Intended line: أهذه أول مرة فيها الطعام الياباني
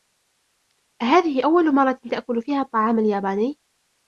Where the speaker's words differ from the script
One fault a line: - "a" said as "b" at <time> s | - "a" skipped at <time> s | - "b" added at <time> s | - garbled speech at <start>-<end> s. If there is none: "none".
- "تأكل" added at 2.0 s